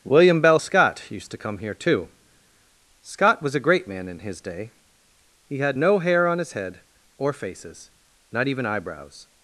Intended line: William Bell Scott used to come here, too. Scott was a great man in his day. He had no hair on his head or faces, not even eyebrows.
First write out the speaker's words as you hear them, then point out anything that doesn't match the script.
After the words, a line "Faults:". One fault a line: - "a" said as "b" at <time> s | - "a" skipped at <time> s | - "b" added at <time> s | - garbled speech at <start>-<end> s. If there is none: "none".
William Bell Scott used to come here, too. Scott was a great man in his day. He had no hair on his head or faces, not even eyebrows.
Faults:
none